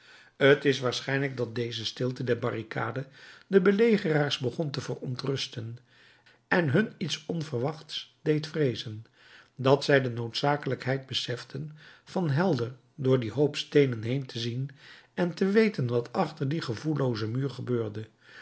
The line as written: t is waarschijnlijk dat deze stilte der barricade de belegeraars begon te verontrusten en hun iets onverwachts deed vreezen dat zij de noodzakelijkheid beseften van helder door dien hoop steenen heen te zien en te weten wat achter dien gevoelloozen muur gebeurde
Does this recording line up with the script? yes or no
yes